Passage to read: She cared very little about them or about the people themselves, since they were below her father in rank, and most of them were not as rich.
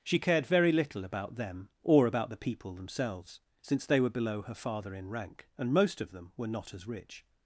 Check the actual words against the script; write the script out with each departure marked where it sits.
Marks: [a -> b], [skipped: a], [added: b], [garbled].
She cared very little about them or about the people themselves, since they were below her father in rank, and most of them were not as rich.